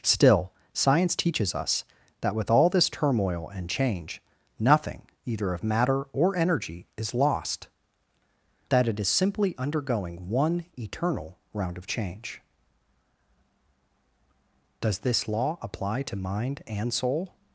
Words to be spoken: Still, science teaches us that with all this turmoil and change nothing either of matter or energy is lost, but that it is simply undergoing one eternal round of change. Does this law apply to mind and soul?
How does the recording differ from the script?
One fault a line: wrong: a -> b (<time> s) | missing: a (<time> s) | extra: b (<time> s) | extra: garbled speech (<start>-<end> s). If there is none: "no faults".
missing: but (7.7 s)